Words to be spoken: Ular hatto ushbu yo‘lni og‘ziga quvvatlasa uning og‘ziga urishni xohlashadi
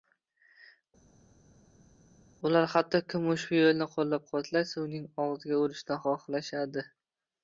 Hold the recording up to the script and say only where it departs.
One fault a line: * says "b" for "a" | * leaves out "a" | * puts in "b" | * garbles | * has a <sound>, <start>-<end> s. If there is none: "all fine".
* puts in "kim"
* says "qo‘llab" for "og‘ziga"